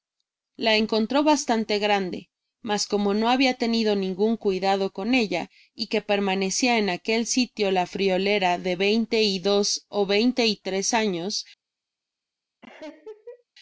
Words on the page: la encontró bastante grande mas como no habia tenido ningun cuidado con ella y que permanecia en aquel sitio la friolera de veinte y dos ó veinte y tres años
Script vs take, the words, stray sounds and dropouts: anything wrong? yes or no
yes